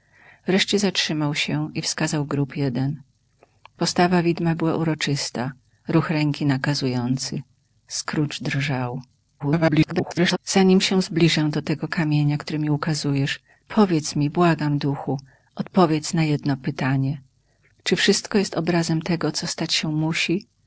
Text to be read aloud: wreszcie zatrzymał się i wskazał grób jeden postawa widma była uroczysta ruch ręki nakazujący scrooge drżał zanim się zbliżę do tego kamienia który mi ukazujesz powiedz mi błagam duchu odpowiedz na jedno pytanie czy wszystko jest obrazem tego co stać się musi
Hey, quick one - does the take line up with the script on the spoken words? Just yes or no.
no